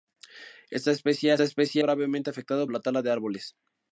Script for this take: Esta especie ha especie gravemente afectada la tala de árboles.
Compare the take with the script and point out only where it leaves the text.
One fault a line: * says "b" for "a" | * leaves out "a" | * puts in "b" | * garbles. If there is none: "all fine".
all fine